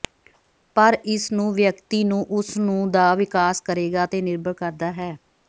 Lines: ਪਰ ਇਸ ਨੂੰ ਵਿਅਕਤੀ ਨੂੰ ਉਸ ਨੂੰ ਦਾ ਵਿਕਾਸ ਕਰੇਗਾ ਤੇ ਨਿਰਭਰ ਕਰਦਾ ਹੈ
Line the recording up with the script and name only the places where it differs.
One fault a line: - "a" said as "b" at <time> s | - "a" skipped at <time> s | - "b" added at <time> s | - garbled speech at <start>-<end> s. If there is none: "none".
none